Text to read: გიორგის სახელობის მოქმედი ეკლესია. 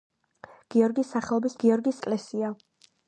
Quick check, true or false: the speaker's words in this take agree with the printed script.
false